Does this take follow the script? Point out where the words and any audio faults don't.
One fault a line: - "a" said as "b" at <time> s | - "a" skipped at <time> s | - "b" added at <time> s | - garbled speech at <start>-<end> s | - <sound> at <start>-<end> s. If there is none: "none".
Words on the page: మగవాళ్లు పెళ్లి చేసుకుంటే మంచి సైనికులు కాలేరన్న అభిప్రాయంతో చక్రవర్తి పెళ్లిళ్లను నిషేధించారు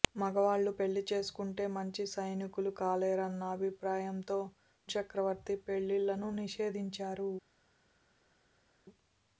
none